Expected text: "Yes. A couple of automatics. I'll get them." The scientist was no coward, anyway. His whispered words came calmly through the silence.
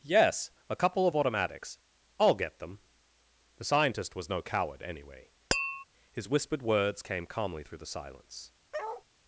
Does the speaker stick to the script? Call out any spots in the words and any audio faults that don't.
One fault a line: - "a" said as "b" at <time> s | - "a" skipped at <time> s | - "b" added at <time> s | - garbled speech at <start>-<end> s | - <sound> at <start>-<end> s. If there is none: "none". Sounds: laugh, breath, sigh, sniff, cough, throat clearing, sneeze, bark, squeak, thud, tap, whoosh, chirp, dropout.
- tap at 5.5-5.8 s
- bark at 8.7-9.0 s